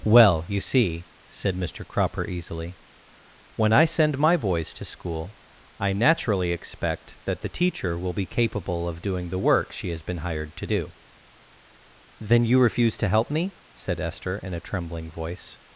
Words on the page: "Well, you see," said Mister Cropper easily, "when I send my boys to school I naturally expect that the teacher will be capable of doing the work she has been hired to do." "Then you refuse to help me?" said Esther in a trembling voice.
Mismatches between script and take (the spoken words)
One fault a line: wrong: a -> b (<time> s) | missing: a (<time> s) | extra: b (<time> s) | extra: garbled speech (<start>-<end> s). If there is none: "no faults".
no faults